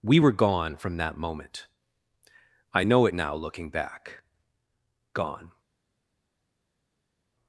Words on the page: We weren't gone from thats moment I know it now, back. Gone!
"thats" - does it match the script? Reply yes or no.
no